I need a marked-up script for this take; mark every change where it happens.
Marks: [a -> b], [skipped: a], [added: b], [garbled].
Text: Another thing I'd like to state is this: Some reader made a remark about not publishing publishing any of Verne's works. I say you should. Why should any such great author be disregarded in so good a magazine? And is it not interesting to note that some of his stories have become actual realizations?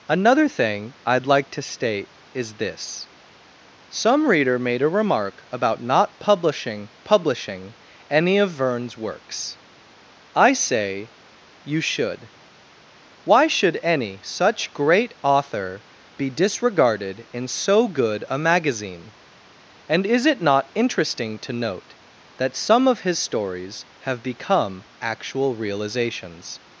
Another thing I'd like to state is this: Some reader made a remark about not publishing publishing any of Verne's works. I say you should. Why should any such great author be disregarded in so good a magazine? And is it not interesting to note that some of his stories have become actual realizations?